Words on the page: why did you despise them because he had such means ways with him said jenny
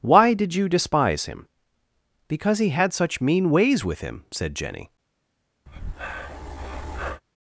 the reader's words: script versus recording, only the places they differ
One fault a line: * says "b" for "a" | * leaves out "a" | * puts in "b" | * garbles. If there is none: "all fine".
* says "him" for "them"
* says "mean" for "means"